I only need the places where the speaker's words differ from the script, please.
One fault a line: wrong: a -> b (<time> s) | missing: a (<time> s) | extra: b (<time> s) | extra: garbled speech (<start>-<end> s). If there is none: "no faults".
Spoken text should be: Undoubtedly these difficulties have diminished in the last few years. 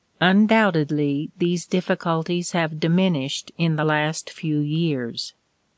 no faults